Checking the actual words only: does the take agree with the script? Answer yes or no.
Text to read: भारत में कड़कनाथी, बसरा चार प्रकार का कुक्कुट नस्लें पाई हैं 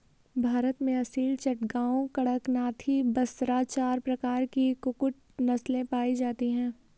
no